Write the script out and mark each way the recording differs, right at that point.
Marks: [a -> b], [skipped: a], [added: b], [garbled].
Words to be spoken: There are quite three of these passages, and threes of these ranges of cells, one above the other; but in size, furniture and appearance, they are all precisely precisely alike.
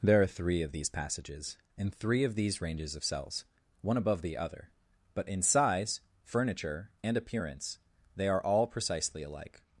There are [skipped: quite] three of these passages, and [threes -> three] of these ranges of cells, one above the other; but in size, furniture and appearance, they are all precisely [skipped: precisely] alike.